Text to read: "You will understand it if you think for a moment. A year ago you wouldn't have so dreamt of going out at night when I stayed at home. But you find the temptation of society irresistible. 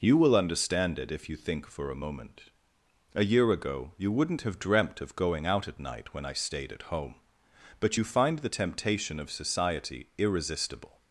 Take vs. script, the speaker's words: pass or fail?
fail